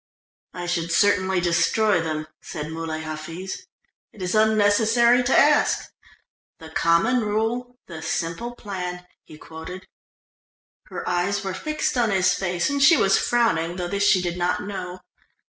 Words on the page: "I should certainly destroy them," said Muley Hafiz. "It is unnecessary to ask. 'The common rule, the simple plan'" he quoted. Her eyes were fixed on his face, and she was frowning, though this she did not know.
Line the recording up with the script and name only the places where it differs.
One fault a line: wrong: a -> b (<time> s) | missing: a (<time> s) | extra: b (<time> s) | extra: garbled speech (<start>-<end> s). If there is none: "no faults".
no faults